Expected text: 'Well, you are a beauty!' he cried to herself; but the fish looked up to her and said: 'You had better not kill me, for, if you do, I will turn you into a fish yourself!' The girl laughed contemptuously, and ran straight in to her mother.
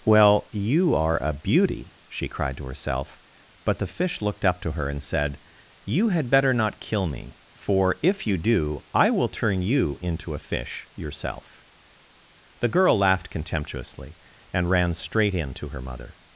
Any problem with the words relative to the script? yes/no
yes